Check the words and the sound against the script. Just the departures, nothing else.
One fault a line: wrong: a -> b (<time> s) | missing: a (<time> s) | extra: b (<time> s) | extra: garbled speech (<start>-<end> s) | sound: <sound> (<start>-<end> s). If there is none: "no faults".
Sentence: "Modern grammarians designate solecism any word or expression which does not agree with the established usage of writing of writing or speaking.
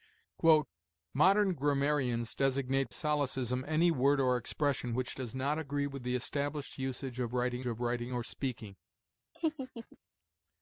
sound: laugh (9.3-10.0 s)